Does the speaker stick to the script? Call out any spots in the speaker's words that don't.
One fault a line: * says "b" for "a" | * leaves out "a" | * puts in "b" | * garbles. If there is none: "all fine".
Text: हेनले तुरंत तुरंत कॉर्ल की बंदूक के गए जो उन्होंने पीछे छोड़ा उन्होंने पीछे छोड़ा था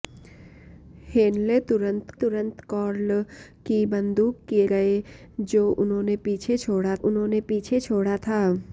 all fine